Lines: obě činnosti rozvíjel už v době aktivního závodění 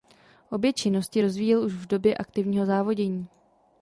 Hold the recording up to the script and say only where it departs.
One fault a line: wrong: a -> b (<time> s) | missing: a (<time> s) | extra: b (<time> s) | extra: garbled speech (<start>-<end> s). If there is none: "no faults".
no faults